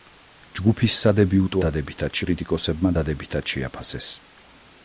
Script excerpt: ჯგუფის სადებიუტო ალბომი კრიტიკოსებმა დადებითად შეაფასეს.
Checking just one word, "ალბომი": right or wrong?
wrong